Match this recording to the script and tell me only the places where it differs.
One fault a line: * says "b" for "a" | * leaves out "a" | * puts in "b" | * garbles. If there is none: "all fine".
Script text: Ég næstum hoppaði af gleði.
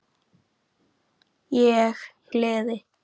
* leaves out "næstum hoppaði af"